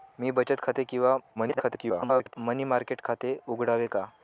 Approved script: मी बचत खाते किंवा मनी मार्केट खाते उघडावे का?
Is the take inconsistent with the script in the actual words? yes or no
yes